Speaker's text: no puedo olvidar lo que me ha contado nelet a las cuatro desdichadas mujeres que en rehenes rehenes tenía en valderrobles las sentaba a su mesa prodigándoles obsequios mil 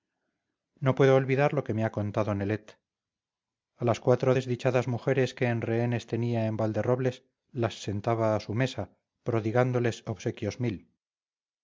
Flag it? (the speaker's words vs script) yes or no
yes